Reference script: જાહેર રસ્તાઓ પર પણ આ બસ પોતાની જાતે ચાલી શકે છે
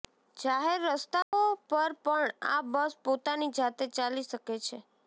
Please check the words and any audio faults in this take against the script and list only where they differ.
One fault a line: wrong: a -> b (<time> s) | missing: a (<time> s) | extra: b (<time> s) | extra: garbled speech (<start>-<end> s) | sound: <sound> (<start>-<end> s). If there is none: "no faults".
sound: dropout (1.2-1.3 s)